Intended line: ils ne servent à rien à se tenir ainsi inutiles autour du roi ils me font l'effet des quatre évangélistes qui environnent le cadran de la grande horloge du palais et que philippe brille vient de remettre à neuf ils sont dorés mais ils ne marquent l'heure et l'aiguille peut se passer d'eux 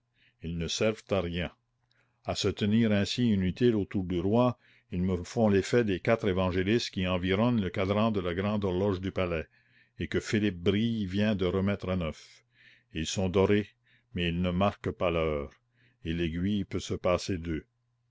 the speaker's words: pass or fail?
fail